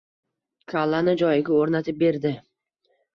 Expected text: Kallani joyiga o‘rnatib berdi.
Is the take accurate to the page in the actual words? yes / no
yes